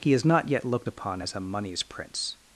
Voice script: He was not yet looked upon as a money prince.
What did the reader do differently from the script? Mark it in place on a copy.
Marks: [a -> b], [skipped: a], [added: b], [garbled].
He [was -> is] not yet looked upon as a [money -> moneys] prince.